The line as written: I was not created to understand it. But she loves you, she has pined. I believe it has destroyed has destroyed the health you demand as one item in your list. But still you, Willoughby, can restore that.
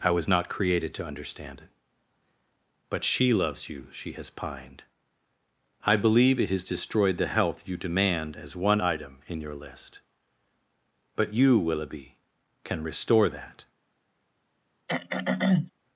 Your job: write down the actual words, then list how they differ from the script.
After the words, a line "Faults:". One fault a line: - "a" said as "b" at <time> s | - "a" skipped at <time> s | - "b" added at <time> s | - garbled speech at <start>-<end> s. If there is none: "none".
I was not created to understand it. But she loves you, she has pined. I believe it has destroyed the health you demand as one item in your list. But you, Willoughby, can restore that.
Faults:
- "has destroyed" skipped at 7.2 s
- "still" skipped at 11.3 s